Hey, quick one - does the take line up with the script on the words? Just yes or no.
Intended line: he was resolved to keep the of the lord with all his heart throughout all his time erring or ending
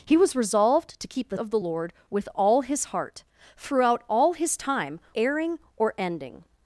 yes